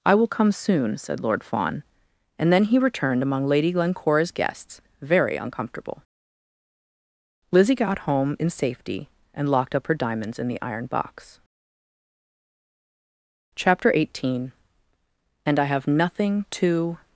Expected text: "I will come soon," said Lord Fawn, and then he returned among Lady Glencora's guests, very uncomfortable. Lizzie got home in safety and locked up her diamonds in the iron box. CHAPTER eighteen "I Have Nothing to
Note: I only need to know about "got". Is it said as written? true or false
true